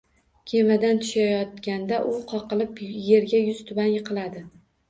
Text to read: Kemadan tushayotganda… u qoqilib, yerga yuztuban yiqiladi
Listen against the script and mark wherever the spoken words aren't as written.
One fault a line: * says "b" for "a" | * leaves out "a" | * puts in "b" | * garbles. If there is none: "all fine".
all fine